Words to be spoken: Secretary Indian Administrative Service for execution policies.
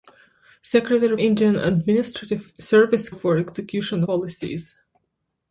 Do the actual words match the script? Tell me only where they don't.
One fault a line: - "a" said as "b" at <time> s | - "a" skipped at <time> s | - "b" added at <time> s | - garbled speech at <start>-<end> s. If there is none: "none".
none